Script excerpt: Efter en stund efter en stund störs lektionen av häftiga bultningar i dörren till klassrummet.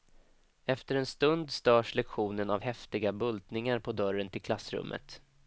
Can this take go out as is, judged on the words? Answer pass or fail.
fail